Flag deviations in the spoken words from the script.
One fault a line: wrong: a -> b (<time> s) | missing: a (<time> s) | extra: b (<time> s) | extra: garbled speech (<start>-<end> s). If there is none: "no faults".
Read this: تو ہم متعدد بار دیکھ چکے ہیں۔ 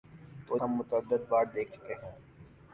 no faults